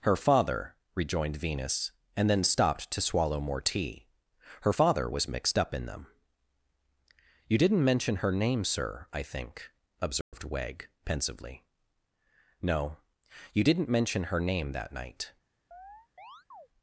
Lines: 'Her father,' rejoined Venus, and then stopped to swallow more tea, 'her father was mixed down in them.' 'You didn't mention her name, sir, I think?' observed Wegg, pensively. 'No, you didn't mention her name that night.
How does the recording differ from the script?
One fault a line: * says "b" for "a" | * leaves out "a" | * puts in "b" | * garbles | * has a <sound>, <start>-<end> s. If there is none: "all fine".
* says "up" for "down"
* has a dropout, 10.2-10.3 s
* has a chirp, 15.7-16.7 s